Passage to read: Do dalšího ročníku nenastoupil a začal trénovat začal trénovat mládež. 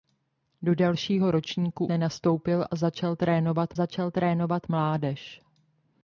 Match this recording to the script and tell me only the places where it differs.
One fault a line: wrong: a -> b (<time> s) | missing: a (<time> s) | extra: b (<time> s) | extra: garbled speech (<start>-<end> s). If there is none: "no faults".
no faults